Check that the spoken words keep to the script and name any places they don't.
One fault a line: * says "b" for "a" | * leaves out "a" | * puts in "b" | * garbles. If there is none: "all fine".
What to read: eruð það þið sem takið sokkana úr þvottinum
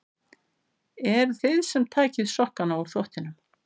* leaves out "það"